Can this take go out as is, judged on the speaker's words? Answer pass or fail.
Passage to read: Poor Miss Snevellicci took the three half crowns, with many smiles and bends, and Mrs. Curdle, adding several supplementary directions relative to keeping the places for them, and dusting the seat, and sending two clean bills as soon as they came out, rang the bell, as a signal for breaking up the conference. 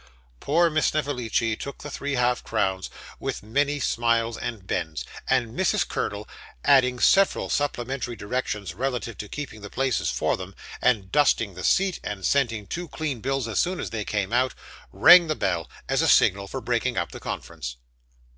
pass